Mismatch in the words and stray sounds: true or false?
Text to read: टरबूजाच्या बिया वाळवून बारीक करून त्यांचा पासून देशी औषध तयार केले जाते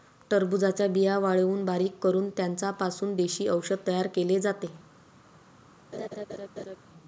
true